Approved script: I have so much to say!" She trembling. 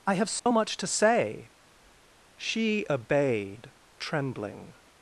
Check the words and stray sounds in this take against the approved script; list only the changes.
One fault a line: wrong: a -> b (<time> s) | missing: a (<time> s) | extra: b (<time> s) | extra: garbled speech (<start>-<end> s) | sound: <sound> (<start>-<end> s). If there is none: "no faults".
sound: dropout (0.4-0.5 s)
extra: obeyed (2.9 s)